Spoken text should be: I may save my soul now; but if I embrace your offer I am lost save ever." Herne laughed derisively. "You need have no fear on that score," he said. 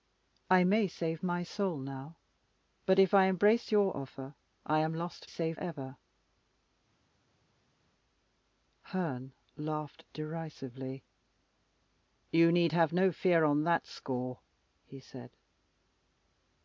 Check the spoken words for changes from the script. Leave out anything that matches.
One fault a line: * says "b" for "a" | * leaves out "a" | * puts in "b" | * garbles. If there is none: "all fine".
all fine